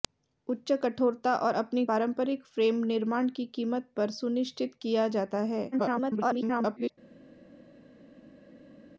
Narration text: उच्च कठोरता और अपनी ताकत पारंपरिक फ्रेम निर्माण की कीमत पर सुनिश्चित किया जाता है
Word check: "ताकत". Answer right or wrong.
wrong